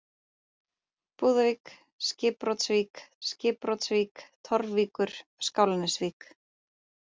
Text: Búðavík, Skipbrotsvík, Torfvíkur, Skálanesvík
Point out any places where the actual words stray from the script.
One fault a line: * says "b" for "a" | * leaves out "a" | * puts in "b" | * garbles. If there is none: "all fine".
* puts in "Skipbrotsvík"